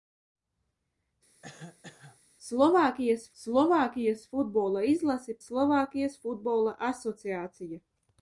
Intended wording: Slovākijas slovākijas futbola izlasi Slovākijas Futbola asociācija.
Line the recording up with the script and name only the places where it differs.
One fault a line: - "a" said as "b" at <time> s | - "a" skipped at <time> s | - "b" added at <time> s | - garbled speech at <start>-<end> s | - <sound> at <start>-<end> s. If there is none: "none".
- cough at 1.4-2.2 s